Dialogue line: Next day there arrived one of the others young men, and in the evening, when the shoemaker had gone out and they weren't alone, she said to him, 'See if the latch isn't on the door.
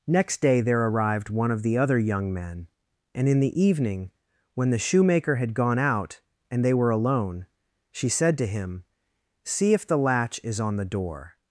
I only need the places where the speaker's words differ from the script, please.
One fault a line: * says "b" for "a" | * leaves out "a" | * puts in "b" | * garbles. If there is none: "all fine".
* says "other" for "others"
* says "were" for "weren't"
* says "is" for "isn't"